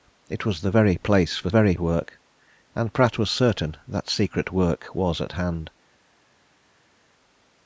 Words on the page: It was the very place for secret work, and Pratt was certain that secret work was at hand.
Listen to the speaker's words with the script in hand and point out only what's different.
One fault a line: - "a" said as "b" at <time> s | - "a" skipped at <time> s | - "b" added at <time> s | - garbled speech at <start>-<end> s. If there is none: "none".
- "secret" said as "very" at 1.5 s